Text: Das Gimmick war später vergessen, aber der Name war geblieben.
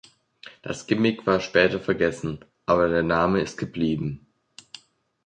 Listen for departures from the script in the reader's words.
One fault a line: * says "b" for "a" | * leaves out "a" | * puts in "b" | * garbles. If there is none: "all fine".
* says "ist" for "war"